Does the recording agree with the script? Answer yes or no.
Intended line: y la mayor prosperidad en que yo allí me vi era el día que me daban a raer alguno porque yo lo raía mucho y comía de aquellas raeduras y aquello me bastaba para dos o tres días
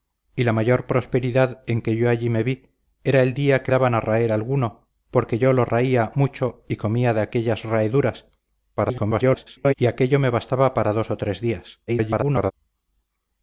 no